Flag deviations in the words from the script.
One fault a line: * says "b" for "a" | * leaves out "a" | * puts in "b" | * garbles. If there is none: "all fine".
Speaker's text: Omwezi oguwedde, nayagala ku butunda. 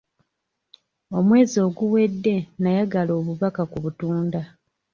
* puts in "obubaka"